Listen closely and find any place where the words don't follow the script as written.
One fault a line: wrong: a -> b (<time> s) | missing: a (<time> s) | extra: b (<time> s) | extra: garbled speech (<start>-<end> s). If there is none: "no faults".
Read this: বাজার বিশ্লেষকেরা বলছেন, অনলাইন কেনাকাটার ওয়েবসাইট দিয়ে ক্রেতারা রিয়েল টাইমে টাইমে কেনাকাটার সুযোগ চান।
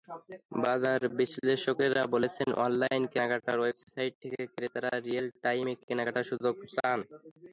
wrong: দিয়ে -> থেকে (4.2 s)
missing: টাইমে (5.7 s)